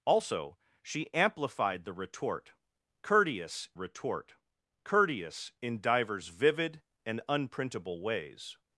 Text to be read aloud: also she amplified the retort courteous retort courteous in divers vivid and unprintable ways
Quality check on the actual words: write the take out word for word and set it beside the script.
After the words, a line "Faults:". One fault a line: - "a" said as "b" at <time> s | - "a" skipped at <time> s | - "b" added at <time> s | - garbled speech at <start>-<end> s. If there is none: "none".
also she amplified the retort courteous retort courteous in divers vivid and unprintable ways
Faults:
none